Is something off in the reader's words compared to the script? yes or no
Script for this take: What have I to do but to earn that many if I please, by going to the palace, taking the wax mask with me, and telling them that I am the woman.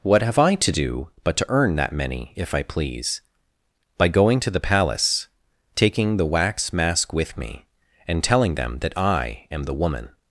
no